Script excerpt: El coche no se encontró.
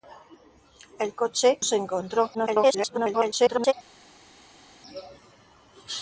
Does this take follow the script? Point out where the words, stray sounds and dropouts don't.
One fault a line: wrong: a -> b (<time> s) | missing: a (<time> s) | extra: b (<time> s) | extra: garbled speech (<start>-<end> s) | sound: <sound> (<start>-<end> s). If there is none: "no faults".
missing: no (1.6 s)
extra: garbled speech (2.3-3.7 s)